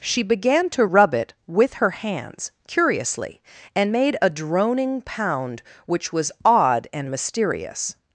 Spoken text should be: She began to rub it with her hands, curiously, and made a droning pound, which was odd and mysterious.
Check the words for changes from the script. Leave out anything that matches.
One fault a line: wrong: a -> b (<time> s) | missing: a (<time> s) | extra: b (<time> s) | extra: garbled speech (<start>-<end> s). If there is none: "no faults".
no faults